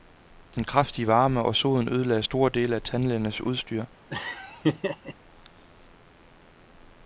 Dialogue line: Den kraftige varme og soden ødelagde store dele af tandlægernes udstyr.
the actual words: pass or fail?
pass